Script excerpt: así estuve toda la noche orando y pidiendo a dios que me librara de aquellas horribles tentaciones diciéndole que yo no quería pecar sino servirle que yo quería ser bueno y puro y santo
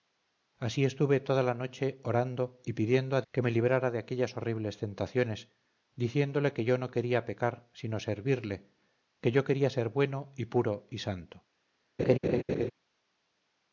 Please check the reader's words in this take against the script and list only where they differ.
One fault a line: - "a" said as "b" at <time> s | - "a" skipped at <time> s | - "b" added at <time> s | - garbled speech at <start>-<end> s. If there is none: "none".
- "dios" skipped at 3.2 s